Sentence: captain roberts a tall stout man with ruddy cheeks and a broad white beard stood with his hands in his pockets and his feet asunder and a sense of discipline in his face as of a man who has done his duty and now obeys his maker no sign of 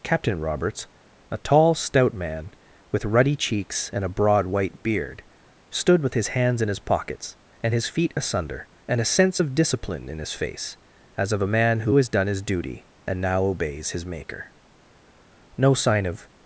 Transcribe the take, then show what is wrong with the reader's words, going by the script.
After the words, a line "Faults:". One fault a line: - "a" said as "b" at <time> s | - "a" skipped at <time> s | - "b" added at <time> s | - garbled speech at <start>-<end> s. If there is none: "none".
captain roberts a tall stout man with ruddy cheeks and a broad white beard stood with his hands in his pockets and his feet asunder and a sense of discipline in his face as of a man who has done his duty and now obeys his maker no sign of
Faults:
none